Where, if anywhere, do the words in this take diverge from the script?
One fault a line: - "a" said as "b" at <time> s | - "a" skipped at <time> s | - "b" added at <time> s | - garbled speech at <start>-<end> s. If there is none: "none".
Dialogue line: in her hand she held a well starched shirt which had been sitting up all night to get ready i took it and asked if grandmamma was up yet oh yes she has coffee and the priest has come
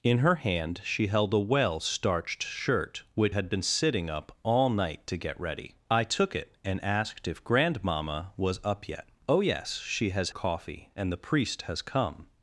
none